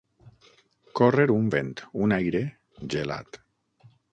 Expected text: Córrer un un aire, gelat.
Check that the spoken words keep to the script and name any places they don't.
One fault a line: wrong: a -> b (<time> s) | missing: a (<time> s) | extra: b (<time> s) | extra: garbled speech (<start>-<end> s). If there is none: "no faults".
extra: vent (1.5 s)